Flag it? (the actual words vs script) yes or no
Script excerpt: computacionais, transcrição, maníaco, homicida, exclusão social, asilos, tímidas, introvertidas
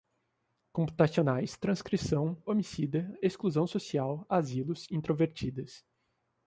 yes